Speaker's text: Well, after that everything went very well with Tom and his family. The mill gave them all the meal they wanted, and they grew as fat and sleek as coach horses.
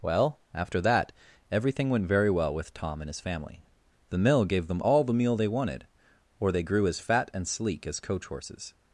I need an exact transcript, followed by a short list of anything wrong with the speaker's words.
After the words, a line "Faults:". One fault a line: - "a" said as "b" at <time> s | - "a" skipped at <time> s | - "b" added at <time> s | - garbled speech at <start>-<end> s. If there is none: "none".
Well, after that everything went very well with Tom and his family. The mill gave them all the meal they wanted, or they grew as fat and sleek as coach horses.
Faults:
- "and" said as "or" at 6.4 s